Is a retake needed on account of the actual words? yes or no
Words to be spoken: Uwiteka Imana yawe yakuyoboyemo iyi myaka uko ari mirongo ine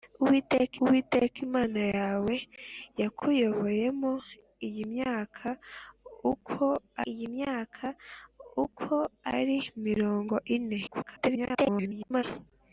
yes